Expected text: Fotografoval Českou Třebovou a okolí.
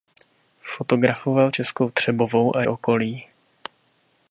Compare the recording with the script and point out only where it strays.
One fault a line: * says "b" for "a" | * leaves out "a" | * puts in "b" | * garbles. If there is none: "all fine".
all fine